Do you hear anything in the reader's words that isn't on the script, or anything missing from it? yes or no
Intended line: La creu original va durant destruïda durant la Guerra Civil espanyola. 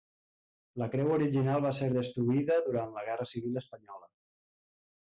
yes